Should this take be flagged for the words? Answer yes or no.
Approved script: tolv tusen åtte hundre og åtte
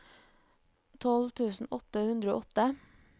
no